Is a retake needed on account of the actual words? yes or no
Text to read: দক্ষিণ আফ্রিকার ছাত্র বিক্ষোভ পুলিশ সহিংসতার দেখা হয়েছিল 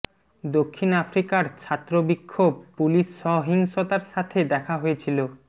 yes